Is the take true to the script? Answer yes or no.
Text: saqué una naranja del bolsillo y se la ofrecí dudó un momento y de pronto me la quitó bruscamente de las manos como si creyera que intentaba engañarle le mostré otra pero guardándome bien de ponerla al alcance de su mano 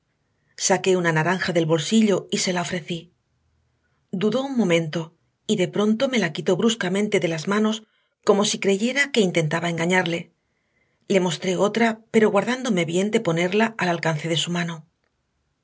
yes